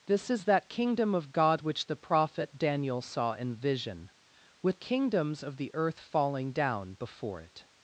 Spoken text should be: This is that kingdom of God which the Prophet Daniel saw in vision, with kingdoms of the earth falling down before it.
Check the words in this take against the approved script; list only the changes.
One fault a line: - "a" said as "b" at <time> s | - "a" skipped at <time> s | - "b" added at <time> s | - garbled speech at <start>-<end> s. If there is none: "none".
none